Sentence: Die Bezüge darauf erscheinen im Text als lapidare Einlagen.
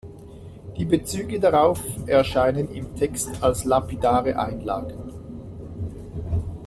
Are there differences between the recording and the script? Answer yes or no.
no